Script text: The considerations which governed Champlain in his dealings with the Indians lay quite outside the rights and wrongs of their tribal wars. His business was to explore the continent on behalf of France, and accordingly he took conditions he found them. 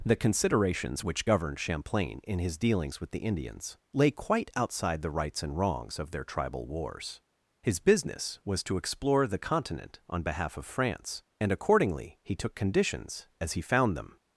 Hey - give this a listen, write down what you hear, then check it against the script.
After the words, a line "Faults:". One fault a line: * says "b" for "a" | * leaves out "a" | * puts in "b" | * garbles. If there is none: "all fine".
The considerations which governed Champlain in his dealings with the Indians lay quite outside the rights and wrongs of their tribal wars. His business was to explore the continent on behalf of France, and accordingly he took conditions as he found them.
Faults:
* puts in "as"